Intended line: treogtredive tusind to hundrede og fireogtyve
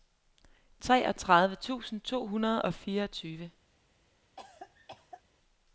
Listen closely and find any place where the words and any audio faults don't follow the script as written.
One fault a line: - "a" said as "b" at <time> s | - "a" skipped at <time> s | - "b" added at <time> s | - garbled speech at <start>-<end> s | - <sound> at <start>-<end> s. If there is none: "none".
- cough at 4.4-5.2 s